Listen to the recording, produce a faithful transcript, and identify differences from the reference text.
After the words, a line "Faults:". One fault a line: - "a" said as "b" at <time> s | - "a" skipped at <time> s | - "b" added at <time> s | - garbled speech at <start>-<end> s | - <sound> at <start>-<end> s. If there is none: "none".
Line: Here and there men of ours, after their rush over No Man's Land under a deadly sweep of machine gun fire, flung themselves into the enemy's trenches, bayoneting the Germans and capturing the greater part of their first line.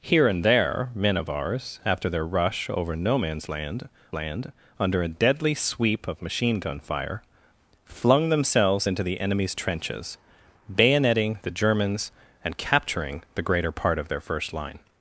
Here and there men of ours, after their rush over No Man's Land Land under a deadly sweep of machine gun fire, flung themselves into the enemy's trenches, bayoneting the Germans and capturing the greater part of their first line.
Faults:
- "Land" added at 4.1 s